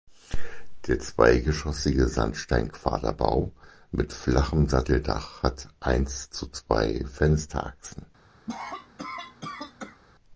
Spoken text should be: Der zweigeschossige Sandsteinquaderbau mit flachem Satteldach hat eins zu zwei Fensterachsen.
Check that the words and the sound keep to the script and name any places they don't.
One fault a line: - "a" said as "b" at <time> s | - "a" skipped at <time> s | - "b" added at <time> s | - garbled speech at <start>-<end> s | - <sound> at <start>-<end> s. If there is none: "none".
- cough at 8.5-10.0 s